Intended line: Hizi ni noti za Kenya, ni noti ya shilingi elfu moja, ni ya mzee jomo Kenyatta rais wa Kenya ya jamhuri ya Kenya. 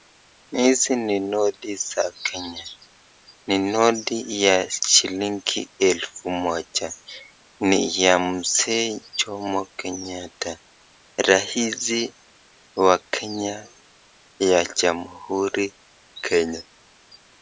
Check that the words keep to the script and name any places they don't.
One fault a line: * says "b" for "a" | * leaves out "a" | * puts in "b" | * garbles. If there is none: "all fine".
* leaves out "ya"